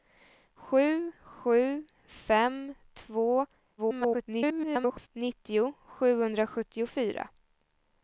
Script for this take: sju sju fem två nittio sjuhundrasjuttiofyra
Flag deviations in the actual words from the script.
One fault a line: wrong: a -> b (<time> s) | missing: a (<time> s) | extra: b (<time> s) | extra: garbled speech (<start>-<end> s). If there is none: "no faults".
extra: garbled speech (3.8-5.1 s)